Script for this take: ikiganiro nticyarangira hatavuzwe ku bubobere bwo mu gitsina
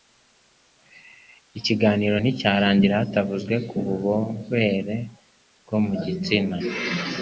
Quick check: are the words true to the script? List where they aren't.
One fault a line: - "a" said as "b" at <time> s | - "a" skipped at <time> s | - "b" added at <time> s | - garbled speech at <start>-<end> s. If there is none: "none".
none